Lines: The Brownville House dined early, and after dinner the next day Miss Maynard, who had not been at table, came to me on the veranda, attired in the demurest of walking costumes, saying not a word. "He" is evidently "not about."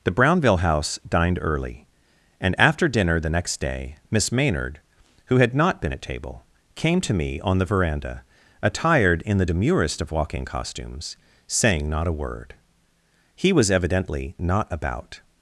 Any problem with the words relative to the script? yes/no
yes